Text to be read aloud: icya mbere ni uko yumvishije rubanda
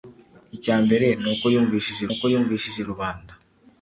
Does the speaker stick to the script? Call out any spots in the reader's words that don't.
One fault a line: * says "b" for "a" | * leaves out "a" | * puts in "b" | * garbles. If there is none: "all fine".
* puts in "uko yumvishije"